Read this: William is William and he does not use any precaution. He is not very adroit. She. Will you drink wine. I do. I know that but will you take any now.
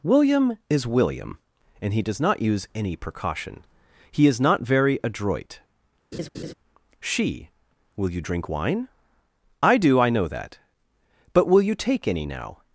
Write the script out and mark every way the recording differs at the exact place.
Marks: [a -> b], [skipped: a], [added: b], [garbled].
William is William and he does not use any precaution. He is not very adroit. She. Will you drink wine. I do. I know that but will you take any now.